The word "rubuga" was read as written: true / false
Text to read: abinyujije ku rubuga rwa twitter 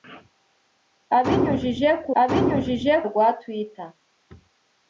false